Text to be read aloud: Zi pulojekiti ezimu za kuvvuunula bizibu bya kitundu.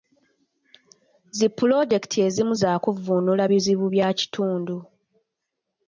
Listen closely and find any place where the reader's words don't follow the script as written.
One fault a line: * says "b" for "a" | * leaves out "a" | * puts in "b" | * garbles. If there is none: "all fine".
all fine